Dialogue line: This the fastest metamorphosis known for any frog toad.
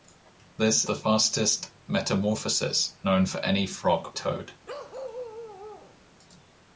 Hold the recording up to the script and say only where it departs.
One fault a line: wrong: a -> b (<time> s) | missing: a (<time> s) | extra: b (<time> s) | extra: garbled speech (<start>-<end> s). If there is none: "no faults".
no faults